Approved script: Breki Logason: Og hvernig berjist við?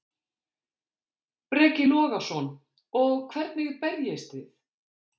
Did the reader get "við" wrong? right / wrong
wrong